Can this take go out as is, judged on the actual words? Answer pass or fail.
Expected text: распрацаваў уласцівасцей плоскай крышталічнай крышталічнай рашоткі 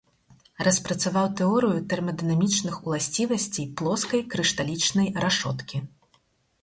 fail